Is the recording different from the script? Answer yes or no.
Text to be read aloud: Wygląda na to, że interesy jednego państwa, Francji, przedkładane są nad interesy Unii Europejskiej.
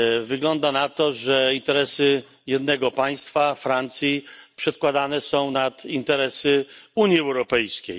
no